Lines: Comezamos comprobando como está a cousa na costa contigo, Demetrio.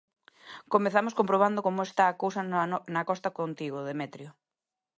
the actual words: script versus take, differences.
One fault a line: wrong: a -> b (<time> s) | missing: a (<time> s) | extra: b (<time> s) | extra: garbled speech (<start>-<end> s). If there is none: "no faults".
no faults